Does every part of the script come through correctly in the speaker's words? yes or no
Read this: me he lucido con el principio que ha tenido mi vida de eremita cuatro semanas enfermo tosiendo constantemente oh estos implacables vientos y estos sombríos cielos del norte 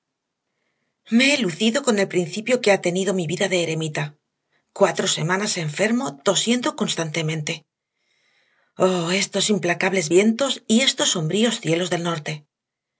yes